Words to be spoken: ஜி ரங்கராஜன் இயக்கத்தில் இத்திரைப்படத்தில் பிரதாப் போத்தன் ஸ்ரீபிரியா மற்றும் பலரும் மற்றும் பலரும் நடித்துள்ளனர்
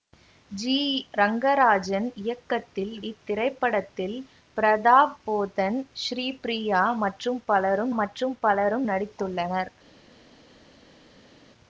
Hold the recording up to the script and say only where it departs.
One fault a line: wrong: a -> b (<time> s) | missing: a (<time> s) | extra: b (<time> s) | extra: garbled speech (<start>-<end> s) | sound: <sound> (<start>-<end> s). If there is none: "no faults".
no faults